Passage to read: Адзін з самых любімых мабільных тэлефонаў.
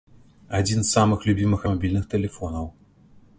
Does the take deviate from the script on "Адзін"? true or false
false